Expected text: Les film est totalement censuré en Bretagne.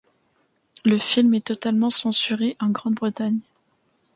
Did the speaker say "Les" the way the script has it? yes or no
no